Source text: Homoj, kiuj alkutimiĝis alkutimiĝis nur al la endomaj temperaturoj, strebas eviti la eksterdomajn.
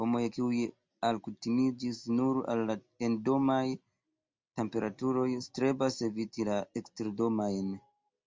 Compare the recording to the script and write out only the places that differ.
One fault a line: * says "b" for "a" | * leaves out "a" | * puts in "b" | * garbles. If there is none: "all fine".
* leaves out "alkutimiĝis"